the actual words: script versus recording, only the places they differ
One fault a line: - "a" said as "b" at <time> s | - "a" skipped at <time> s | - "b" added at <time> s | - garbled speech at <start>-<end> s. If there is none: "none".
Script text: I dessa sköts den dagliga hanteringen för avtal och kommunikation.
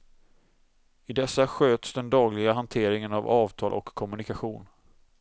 - "för" said as "av" at 3.1 s